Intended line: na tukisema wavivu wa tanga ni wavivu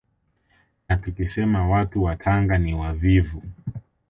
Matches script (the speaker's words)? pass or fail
fail